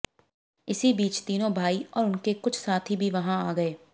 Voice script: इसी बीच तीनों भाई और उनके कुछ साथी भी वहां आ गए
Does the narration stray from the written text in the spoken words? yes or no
no